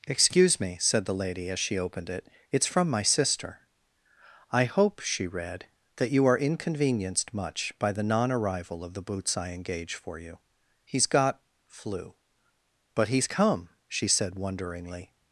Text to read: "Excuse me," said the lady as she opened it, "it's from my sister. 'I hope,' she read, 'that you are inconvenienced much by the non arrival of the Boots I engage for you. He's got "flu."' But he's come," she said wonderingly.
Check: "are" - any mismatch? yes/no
no